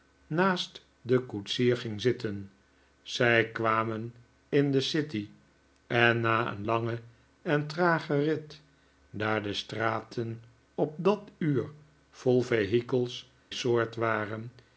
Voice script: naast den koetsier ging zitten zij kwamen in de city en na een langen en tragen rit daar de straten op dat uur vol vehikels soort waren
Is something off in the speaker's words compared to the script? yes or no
no